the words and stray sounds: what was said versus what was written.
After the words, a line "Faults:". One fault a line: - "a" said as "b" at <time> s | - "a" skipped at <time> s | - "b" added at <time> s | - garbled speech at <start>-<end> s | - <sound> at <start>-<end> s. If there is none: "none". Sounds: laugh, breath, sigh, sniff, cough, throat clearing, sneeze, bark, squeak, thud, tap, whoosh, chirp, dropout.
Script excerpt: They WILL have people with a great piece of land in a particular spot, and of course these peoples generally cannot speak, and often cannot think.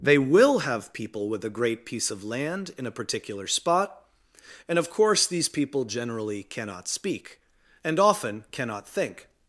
They WILL have people with a great piece of land in a particular spot, and of course these people generally cannot speak, and often cannot think.
Faults:
- "peoples" said as "people" at 5.5 s